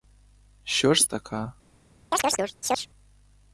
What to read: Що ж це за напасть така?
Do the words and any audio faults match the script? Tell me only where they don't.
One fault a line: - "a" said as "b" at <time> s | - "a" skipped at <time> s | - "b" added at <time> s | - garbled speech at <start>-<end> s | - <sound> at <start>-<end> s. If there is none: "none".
- "це за напасть" skipped at 1.1 s
- chirp at 2.1-2.9 s